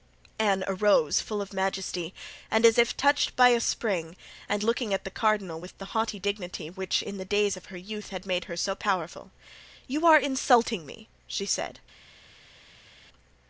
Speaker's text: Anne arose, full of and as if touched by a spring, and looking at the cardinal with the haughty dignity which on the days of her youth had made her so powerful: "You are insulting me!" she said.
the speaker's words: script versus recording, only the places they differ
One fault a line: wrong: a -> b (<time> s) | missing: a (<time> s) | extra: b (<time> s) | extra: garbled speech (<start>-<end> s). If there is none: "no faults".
extra: majesty (1.5 s)
wrong: on -> in (7.0 s)